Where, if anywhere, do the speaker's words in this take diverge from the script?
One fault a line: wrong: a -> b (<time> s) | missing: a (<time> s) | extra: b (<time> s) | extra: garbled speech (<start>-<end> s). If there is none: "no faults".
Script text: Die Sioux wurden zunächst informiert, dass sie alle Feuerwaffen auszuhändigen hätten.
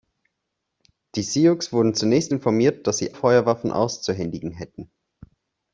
missing: alle (3.2 s)